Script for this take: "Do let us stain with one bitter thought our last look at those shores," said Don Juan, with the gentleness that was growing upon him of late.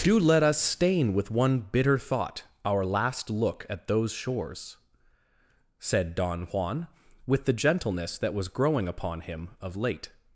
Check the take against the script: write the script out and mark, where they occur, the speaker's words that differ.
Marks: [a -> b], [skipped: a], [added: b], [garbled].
"Do let us stain with one bitter thought our last look at those shores," said Don Juan, with the gentleness that was growing upon him of late.